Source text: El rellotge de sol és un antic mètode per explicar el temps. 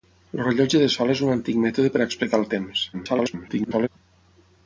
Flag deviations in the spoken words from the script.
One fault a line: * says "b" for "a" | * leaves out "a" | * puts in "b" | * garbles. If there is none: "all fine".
* garbles